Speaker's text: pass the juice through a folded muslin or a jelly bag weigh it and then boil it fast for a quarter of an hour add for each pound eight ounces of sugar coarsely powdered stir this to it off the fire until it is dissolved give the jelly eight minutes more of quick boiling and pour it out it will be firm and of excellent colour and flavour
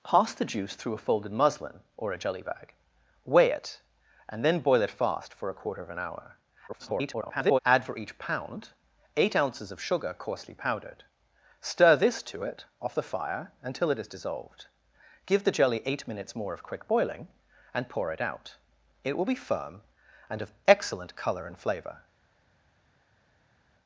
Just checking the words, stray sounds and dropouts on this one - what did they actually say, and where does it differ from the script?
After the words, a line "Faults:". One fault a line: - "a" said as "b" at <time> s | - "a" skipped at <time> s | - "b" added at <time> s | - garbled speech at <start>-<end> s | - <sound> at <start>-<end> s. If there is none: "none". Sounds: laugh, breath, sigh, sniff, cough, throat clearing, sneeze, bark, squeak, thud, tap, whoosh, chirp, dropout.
pass the juice through a folded muslin or a jelly bag weigh it and then boil it fast for a quarter of an hour [garbled] add for each pound eight ounces of sugar coarsely powdered stir this to it off the fire until it is dissolved give the jelly eight minutes more of quick boiling and pour it out it will be firm and of excellent colour and flavour
Faults:
- garbled speech at 6.7-7.6 s